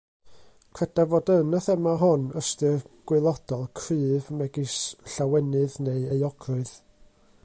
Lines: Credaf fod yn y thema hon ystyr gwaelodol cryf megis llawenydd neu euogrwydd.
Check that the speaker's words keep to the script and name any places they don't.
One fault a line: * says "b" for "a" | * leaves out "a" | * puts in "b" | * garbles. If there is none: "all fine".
all fine